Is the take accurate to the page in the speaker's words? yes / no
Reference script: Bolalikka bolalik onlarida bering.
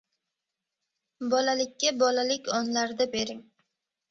yes